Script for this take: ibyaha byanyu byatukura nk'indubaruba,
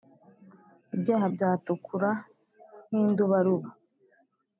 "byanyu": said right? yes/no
no